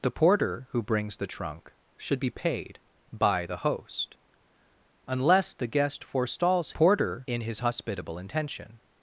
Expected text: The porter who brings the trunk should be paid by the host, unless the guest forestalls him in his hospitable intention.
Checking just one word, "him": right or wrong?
wrong